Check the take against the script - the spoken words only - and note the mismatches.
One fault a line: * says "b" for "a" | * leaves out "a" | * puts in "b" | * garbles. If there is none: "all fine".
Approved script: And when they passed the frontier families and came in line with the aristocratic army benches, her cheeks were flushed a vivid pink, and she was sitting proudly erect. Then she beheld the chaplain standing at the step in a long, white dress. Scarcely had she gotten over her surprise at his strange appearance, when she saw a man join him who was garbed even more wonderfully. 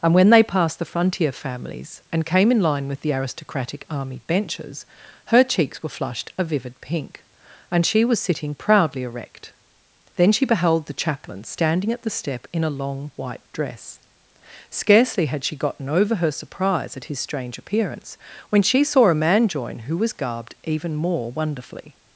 * leaves out "him"